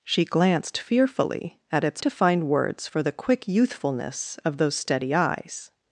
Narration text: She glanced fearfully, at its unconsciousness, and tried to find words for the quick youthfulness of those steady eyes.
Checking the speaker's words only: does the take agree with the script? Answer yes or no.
no